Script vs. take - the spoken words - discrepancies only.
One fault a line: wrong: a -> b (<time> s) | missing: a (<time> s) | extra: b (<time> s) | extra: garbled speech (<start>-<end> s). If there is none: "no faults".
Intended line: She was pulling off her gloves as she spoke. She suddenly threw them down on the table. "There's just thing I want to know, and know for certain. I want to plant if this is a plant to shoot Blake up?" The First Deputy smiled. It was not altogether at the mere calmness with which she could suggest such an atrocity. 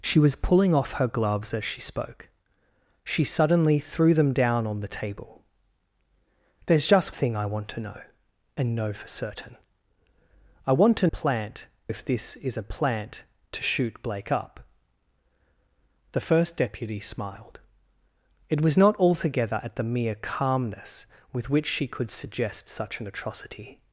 no faults